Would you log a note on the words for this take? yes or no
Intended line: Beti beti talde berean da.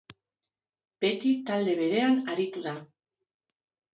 yes